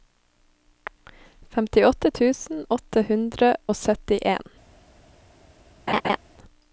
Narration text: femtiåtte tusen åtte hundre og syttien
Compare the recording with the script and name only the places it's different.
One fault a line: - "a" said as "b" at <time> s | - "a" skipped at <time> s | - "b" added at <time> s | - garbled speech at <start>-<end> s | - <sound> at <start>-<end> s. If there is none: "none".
- laugh at 5.9-6.2 s